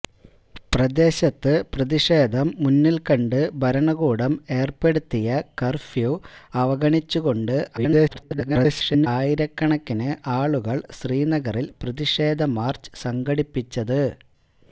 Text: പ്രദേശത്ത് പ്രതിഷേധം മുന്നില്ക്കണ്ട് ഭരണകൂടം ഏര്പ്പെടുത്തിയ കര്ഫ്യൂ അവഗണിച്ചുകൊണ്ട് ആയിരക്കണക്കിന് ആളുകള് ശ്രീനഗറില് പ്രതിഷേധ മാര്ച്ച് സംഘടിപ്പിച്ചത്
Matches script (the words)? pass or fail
fail